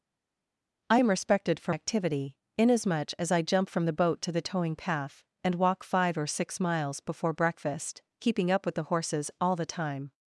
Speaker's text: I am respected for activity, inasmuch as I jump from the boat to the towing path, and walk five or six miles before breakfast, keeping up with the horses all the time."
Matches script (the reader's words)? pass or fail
pass